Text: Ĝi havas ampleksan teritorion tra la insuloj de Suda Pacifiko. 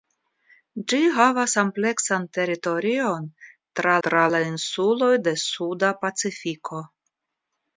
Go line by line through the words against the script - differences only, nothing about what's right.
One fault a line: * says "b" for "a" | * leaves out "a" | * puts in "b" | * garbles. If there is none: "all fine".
* puts in "tra"